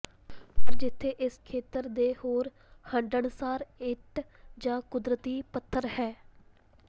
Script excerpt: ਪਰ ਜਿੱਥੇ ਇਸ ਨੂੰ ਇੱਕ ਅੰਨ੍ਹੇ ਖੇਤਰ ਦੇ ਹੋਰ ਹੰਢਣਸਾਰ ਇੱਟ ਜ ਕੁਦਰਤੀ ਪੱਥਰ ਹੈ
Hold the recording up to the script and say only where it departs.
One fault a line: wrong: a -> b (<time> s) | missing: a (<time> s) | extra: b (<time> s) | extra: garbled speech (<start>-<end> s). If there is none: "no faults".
missing: ਨੂੰ ਇੱਕ ਅੰਨ੍ਹੇ (1.4 s)